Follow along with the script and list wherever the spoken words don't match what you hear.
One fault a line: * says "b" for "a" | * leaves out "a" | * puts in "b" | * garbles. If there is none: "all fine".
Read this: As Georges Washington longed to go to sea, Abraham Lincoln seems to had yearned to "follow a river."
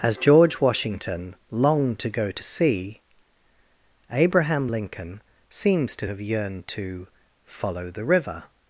* says "George" for "Georges"
* says "have" for "had"
* says "the" for "a"